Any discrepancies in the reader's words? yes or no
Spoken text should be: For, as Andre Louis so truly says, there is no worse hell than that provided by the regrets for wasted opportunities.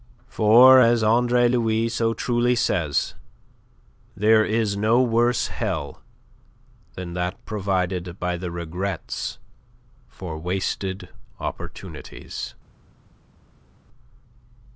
no